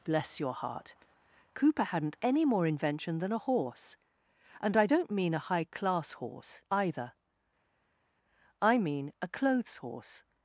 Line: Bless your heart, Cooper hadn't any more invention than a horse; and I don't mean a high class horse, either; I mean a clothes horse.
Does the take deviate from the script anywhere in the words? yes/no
no